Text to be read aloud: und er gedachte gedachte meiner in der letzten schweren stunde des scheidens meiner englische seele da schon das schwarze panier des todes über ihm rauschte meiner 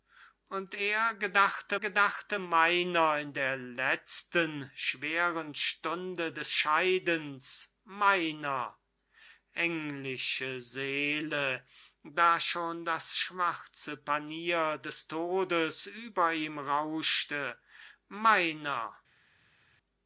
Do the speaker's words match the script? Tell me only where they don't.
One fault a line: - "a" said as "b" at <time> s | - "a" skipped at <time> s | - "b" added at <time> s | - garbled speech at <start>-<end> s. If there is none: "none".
none